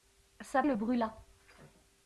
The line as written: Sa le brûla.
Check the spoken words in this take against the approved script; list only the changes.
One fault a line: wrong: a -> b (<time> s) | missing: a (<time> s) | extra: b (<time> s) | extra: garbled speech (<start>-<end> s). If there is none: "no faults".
no faults